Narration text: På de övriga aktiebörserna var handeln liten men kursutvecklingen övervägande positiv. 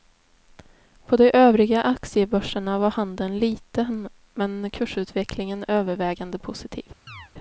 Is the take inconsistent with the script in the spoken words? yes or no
no